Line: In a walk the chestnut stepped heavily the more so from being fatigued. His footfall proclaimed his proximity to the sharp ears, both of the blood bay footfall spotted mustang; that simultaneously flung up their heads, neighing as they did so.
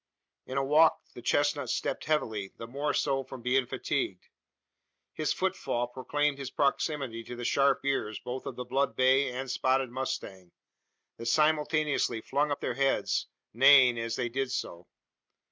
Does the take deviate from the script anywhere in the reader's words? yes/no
yes